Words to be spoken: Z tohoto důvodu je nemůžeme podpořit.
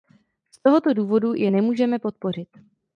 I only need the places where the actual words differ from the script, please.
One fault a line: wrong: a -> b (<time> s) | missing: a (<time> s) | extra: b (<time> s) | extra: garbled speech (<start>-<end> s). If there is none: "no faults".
no faults